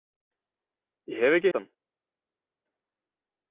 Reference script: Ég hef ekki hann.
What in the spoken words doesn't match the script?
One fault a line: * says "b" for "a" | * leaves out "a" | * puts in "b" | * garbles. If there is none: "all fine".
all fine